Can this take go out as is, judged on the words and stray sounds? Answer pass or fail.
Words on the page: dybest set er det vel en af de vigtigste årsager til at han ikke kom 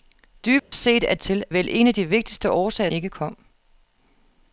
fail